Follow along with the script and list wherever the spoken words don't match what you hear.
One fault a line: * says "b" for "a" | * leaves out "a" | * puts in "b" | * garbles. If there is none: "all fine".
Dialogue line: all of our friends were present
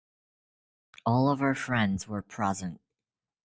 all fine